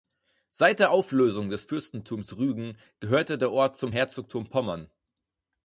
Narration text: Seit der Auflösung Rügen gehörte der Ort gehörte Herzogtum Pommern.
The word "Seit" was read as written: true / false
true